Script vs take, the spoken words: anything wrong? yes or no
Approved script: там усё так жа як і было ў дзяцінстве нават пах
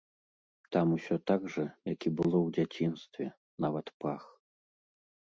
no